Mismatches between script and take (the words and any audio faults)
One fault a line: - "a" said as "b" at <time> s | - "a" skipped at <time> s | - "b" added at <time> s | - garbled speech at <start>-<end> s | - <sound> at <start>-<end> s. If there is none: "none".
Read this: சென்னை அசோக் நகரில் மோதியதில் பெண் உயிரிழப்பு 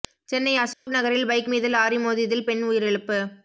- dropout at 0.7-0.9 s
- "பைக் மீது லாரி" added at 1.3 s